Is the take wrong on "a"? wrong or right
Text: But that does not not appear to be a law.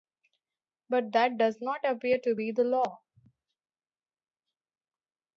wrong